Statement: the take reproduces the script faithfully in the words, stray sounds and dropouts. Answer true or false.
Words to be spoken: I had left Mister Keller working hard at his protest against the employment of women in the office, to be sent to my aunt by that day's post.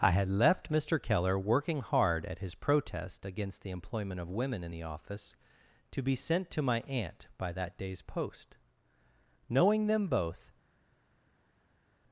false